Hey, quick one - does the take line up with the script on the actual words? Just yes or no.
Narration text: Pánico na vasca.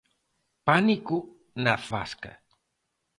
yes